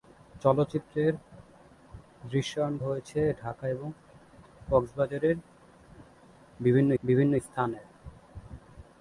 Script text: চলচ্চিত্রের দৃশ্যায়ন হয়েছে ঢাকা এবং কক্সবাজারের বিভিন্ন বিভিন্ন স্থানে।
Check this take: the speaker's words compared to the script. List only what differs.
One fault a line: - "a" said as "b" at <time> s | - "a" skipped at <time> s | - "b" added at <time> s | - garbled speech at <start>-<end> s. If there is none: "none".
none